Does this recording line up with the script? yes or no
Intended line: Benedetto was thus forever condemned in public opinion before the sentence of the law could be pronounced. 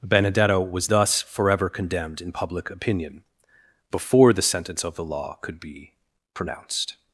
yes